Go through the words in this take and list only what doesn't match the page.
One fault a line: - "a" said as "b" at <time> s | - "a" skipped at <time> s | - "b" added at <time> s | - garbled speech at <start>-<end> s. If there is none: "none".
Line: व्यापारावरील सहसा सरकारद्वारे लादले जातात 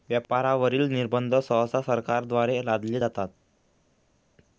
- "निर्बंध" added at 0.9 s